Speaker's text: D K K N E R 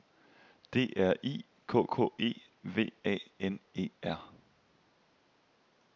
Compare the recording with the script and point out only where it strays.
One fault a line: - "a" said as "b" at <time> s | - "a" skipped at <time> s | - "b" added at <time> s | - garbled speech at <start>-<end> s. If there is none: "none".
- "R I" added at 1.0 s
- "E V A" added at 2.2 s